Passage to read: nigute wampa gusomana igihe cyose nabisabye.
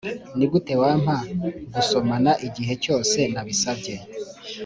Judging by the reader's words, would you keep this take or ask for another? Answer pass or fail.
pass